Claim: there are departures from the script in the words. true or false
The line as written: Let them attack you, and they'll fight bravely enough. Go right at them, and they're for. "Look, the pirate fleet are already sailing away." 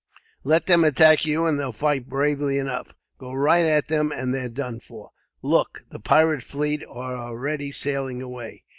true